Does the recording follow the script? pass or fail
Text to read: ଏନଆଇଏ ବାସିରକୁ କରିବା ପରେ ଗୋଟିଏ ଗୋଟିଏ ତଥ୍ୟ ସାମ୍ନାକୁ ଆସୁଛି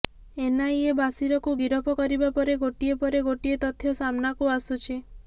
fail